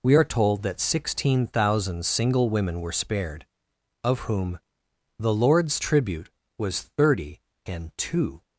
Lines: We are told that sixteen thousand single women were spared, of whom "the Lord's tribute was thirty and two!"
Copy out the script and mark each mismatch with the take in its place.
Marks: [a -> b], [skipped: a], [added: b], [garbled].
We are told that sixteen thousand single women were spared, of whom "the Lord's tribute was thirty and two!"